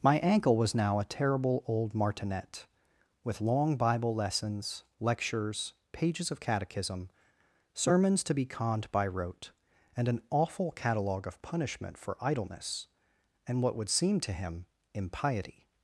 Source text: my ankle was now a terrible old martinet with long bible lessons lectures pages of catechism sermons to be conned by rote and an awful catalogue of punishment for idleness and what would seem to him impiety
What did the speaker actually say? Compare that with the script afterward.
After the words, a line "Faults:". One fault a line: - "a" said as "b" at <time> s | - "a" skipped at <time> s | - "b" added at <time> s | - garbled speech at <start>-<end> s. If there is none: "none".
my ankle was now a terrible old martinet with long bible lessons lectures pages of catechism sermons to be conned by rote and an awful catalogue of punishment for idleness and what would seem to him impiety
Faults:
none